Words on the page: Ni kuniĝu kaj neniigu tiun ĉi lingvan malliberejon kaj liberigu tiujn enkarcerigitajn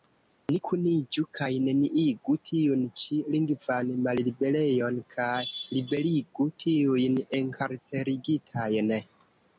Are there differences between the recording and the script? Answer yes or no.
no